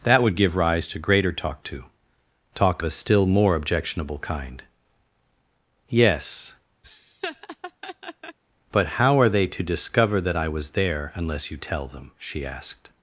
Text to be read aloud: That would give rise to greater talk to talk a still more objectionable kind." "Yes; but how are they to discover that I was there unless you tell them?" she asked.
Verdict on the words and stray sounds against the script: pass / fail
fail